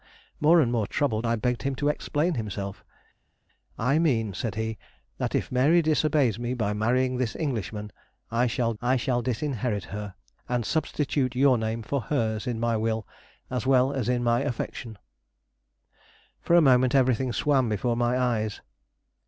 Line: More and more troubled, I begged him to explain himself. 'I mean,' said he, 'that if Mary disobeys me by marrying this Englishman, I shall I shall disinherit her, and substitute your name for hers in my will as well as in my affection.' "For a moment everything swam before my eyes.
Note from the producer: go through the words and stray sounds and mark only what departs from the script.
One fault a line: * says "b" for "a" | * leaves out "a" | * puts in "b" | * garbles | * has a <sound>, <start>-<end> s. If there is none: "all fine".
all fine